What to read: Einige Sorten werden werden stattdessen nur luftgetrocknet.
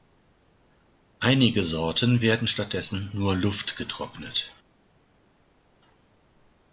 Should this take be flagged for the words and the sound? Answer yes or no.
yes